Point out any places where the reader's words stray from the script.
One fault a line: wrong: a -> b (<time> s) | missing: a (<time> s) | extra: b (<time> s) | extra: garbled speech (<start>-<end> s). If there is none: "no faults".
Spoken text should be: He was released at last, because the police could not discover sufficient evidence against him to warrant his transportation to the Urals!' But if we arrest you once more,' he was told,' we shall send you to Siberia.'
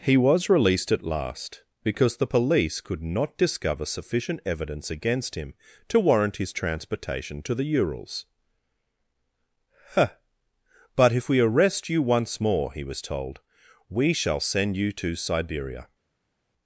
extra: huh (9.9 s)